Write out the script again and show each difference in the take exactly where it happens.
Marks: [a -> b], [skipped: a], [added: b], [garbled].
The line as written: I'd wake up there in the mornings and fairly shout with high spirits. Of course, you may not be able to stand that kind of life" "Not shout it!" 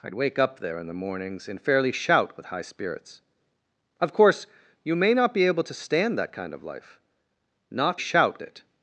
I'd wake up there in the mornings and fairly shout with high spirits. Of course, you may not be able to stand that kind of life" "Not shout it!"